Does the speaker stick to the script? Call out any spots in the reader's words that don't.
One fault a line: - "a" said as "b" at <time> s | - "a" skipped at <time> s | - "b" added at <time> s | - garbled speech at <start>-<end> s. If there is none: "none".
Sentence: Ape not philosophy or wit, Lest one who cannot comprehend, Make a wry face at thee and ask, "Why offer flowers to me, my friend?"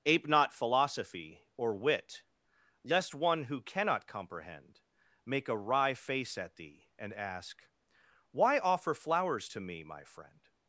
none